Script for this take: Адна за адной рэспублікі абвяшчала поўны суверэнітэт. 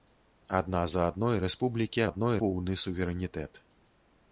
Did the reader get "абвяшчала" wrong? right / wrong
wrong